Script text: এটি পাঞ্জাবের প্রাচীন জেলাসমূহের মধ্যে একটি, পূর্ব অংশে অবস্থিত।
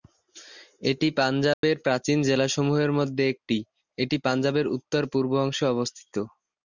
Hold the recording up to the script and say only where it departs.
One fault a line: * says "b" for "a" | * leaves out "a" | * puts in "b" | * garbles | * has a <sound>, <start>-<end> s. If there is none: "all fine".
* has a dropout, 1.5-1.6 s
* puts in "এটি পাঞ্জাবের উত্তর"